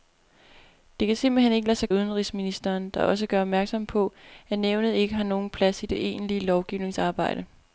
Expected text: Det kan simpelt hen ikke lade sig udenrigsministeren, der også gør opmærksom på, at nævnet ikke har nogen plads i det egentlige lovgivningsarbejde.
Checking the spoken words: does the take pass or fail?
pass